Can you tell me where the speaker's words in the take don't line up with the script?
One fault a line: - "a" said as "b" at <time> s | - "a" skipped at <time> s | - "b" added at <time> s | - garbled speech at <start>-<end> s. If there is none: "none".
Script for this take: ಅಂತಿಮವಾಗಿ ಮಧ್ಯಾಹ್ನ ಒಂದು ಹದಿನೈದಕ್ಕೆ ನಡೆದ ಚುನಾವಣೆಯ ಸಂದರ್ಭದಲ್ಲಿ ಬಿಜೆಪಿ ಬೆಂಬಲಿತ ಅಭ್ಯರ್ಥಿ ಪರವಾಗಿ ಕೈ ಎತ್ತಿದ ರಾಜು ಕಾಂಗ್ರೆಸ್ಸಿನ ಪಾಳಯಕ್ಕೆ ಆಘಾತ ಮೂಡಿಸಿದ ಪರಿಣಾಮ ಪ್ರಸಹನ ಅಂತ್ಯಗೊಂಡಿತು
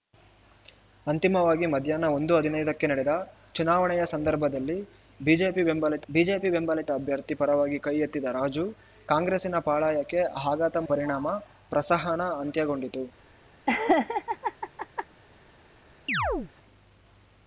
- "ಬಿಜೆಪಿ ಬೆಂಬಲಿತ" added at 6.1 s
- "ಮೂಡಿಸಿದ" skipped at 10.8 s